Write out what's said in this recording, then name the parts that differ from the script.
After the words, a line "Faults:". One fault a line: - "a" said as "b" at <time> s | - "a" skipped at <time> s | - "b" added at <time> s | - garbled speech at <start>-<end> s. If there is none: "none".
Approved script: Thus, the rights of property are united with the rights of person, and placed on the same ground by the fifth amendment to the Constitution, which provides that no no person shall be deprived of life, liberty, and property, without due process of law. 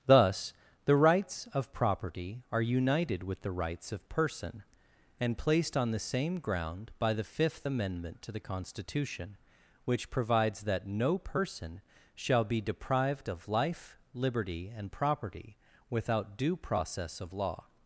Thus, the rights of property are united with the rights of person, and placed on the same ground by the fifth amendment to the Constitution, which provides that no person shall be deprived of life, liberty, and property, without due process of law.
Faults:
- "no" skipped at 11.2 s